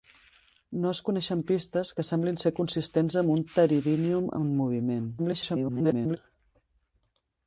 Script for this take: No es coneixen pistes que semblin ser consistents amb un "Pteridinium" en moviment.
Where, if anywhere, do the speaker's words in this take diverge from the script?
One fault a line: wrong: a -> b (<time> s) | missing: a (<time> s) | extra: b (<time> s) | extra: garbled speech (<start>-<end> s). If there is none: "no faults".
extra: garbled speech (5.2-6.2 s)